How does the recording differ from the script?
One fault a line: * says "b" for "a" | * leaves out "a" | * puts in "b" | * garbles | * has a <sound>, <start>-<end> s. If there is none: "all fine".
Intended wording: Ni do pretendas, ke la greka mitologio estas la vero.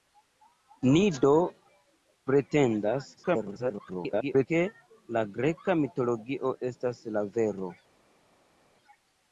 * garbles